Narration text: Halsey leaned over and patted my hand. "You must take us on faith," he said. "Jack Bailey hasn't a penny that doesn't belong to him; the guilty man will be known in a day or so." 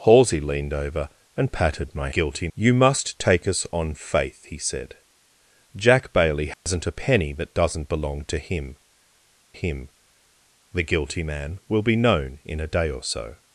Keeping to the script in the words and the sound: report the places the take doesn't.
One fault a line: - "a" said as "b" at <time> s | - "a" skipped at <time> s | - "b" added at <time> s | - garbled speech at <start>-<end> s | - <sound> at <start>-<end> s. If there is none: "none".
- "hand" said as "guilty" at 2.1 s
- dropout at 6.5-6.7 s
- "him" added at 9.5 s